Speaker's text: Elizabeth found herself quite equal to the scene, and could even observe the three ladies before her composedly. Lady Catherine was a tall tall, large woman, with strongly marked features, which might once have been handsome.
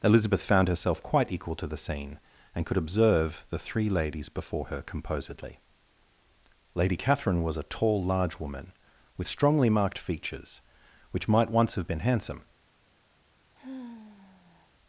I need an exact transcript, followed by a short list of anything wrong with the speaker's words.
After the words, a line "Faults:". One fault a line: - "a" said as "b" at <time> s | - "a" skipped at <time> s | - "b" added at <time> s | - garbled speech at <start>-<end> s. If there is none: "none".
Elizabeth found herself quite equal to the scene, and could observe the three ladies before her composedly. Lady Catherine was a tall, large woman, with strongly marked features, which might once have been handsome.
Faults:
- "even" skipped at 2.8 s
- "tall" skipped at 8.0 s